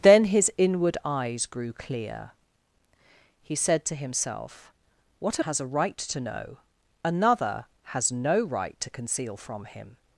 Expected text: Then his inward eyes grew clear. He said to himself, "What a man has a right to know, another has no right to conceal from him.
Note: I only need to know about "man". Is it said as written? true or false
false